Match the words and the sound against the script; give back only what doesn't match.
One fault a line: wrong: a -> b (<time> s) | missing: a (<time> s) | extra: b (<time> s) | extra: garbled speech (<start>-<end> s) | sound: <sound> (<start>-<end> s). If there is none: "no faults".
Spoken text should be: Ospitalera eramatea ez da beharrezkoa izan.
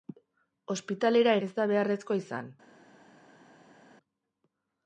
missing: eramatea (1.4 s)